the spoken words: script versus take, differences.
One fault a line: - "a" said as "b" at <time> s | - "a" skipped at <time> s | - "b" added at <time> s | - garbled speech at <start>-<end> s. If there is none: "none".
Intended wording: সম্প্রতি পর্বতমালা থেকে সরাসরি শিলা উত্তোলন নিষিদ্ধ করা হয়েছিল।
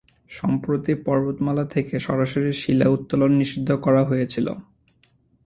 none